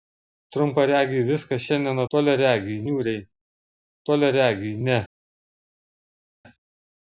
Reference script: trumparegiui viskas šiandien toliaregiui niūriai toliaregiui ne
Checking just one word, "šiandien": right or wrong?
right